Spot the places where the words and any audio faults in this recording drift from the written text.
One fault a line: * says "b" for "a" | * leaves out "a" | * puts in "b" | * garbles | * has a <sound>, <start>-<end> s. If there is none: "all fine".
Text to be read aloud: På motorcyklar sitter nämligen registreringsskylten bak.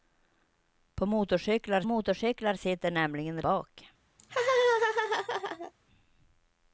* puts in "motorcyklar"
* leaves out "registreringsskylten"
* has a laugh, 4.2-5.7 s